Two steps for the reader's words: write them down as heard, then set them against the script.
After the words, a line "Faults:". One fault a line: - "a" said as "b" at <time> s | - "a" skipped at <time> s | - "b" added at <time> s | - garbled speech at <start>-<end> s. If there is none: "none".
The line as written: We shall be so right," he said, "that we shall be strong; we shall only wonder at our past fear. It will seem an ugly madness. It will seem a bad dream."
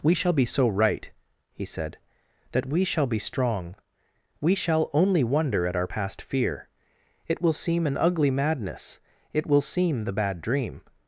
We shall be so right," he said, "that we shall be strong; we shall only wonder at our past fear. It will seem an ugly madness. It will seem the bad dream."
Faults:
- "a" said as "the" at 10.0 s